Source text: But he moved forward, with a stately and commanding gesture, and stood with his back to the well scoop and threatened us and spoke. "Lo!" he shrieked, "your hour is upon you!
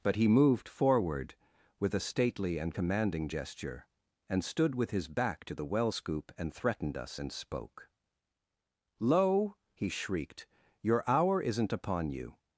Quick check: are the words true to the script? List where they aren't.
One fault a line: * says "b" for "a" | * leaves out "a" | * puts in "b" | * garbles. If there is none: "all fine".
* says "isn't" for "is"